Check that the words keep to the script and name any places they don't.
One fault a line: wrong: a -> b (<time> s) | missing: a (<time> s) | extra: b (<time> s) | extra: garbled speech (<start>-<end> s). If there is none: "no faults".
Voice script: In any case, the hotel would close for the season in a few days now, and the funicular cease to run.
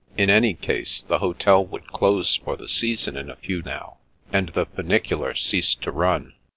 missing: days (3.6 s)